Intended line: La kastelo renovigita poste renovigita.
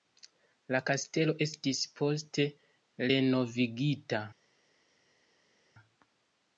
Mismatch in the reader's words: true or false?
true